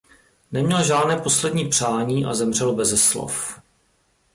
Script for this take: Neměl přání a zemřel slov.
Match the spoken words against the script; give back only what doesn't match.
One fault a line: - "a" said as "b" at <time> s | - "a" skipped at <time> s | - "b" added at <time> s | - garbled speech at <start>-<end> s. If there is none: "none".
- "žádné poslední" added at 0.8 s
- "beze" added at 2.8 s